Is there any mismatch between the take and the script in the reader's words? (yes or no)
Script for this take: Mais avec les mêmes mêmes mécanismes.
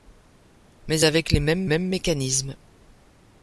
no